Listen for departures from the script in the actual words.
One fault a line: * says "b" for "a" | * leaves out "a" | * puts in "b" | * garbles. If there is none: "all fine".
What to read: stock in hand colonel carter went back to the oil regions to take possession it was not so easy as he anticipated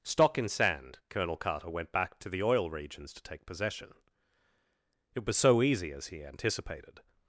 * says "sand" for "hand"
* leaves out "not"